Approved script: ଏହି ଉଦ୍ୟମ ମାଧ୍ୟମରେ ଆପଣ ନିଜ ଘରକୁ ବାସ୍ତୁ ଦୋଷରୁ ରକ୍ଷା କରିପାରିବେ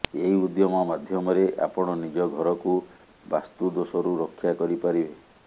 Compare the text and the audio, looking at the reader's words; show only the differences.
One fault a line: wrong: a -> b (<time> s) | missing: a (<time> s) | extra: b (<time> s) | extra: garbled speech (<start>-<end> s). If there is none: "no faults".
no faults